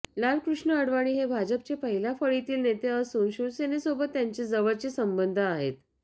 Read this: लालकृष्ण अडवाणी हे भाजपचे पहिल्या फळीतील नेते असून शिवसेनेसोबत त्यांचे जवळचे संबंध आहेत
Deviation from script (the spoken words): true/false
false